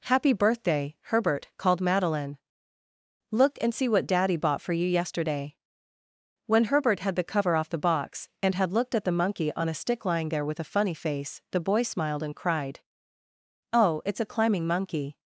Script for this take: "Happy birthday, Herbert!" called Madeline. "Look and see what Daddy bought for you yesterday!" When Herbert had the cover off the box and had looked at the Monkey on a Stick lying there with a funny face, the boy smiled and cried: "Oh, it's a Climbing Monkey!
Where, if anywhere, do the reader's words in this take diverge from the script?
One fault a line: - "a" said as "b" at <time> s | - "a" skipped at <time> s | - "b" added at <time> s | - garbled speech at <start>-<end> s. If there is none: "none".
none